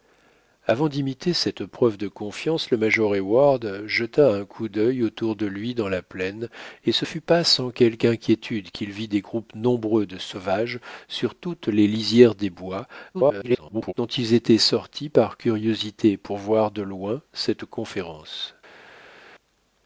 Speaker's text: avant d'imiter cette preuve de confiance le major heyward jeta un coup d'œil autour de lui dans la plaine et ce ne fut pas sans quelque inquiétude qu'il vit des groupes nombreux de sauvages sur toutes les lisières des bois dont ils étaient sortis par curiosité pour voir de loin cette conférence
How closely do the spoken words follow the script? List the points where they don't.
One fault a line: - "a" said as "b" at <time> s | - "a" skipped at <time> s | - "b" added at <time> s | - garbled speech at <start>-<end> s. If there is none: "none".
- "ne" skipped at 7.0 s
- garbled speech at 13.1-13.9 s